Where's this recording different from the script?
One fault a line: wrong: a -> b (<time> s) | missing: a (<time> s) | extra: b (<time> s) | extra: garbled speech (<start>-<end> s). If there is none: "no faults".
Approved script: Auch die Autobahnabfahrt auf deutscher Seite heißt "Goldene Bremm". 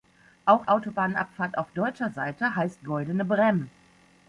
missing: die (0.7 s)